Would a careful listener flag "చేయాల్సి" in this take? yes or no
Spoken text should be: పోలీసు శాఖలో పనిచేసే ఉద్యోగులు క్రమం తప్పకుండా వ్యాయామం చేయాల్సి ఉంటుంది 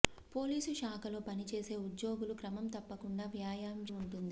yes